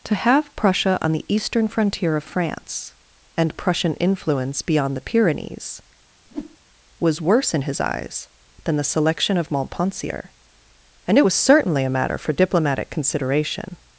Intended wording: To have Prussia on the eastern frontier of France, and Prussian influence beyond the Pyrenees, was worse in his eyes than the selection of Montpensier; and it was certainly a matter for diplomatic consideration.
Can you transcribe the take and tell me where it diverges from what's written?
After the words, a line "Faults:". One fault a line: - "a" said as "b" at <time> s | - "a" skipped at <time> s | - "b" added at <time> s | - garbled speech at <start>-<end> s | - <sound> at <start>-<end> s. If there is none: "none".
To have Prussia on the eastern frontier of France, and Prussian influence beyond the Pyrenees, was worse in his eyes than the selection of Montpensier; and it was certainly a matter for diplomatic consideration.
Faults:
- whoosh at 6.3-6.6 s